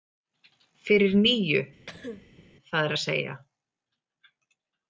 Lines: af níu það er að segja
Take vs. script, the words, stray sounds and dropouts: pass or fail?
fail